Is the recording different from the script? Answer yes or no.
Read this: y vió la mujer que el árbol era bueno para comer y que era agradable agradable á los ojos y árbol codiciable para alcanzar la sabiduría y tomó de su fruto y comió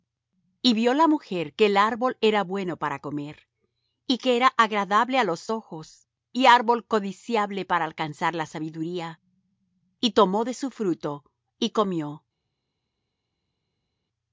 yes